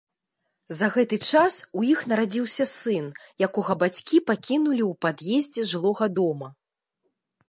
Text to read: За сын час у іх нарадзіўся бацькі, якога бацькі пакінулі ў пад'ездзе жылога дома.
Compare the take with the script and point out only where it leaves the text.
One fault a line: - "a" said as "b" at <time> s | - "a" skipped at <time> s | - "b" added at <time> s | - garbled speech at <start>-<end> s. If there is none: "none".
- "сын" said as "гэты" at 0.9 s
- "бацькі" said as "сын" at 2.7 s